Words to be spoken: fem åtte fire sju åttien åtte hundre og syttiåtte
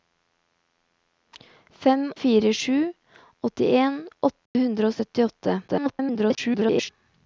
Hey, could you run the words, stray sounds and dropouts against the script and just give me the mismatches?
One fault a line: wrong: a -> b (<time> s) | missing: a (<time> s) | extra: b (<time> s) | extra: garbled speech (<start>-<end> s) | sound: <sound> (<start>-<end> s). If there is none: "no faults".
missing: åtte (2.1 s)
sound: dropout (4.5-4.5 s)
extra: garbled speech (5.7-6.9 s)